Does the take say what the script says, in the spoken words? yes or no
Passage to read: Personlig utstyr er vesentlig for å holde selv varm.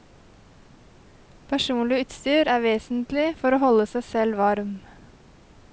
no